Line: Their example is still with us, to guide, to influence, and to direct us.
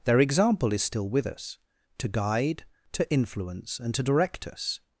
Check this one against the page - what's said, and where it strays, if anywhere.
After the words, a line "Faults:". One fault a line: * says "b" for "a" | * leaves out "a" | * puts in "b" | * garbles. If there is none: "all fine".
Their example is still with us, to guide, to influence, and to direct us.
Faults:
all fine